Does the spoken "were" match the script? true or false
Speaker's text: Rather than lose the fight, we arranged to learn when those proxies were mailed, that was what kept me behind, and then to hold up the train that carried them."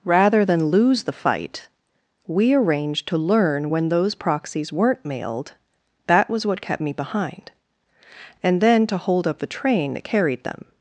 false